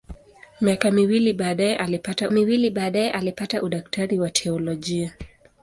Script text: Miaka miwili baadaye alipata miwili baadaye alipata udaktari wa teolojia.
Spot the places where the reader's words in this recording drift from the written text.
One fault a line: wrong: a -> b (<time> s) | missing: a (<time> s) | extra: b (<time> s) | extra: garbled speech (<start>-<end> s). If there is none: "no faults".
no faults